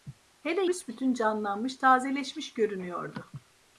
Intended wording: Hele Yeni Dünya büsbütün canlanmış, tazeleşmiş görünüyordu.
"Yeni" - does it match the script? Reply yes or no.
no